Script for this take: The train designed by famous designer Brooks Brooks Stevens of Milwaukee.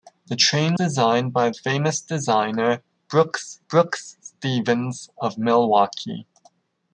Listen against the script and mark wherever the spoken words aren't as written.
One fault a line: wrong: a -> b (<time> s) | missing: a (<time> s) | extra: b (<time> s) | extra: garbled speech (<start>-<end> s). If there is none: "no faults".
no faults